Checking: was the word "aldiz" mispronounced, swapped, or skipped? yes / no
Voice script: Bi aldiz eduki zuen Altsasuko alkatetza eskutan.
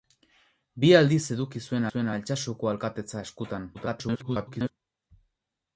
no